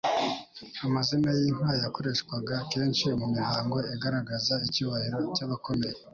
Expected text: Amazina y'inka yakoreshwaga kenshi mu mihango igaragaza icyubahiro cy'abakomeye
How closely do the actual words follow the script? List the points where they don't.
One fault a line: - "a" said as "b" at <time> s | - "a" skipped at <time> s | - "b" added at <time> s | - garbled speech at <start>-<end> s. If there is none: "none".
none